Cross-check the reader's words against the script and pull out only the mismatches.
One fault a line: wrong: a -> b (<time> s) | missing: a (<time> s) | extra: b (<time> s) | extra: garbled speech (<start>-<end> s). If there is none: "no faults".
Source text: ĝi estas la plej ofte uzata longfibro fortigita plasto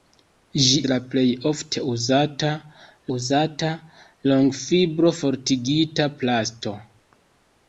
missing: estas (0.8 s)
extra: uzata (3.2 s)